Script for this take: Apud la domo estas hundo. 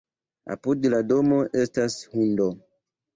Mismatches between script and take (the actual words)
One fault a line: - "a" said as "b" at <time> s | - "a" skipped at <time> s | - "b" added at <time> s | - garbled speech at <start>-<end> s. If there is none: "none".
none